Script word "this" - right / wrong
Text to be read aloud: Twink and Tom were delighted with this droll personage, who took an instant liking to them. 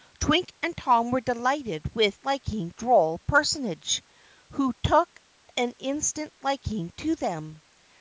wrong